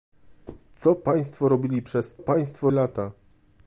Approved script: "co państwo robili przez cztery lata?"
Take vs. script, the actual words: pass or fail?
fail